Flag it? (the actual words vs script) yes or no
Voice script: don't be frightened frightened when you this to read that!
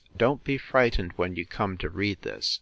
yes